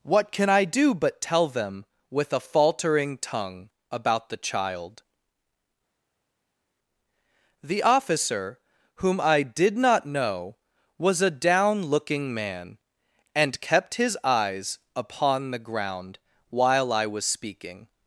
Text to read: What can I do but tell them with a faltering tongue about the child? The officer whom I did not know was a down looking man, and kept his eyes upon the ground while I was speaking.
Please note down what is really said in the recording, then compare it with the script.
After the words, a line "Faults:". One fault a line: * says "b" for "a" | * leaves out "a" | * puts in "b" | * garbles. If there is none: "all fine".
What can I do but tell them with a faltering tongue about the child? The officer whom I did not know was a down looking man, and kept his eyes upon the ground while I was speaking.
Faults:
all fine